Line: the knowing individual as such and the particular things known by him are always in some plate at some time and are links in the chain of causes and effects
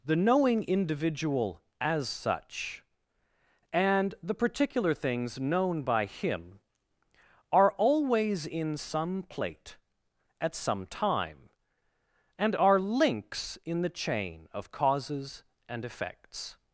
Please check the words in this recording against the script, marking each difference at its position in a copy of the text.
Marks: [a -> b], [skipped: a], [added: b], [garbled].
the knowing individual as such and the particular things known by him are always in some plate at some time and are links in the chain of causes and effects